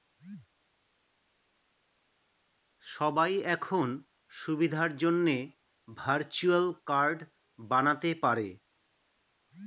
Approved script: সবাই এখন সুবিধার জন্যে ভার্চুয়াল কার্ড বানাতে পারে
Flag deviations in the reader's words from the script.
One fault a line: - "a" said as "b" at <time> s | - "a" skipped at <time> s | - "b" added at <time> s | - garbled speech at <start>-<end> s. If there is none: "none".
none